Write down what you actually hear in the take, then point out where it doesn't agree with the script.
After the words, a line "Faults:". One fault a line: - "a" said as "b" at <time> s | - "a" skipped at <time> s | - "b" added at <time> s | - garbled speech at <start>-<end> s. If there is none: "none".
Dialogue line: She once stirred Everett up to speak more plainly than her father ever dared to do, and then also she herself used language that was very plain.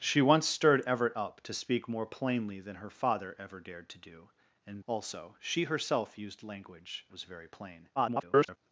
She once stirred Everett up to speak more plainly than her father ever dared to do, and also she herself used language was very plain. [garbled]
Faults:
- "then" skipped at 4.8 s
- "that" skipped at 7.0 s
- garbled speech at 8.0-8.6 s